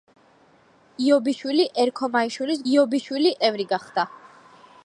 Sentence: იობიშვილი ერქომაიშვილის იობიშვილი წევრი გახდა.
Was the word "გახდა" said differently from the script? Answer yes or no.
no